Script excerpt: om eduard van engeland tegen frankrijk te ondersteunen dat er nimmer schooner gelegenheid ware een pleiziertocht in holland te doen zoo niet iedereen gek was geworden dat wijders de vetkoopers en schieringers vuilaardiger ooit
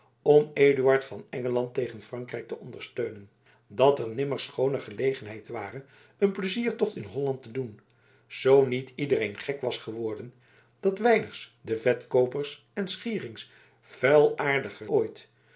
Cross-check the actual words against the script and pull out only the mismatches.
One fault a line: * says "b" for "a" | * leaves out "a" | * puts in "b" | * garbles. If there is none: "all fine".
all fine